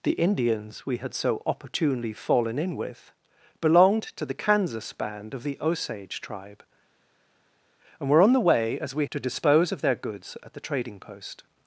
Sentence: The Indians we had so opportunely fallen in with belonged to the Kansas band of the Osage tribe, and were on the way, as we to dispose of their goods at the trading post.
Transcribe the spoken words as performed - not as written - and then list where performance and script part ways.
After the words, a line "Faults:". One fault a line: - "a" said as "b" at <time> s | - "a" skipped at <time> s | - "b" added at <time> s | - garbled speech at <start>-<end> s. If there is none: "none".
The Indians we had so opportunely fallen in with belonged to the Kansas band of the Osage tribe, and were on the way, as we to dispose of their goods at the trading post.
Faults:
none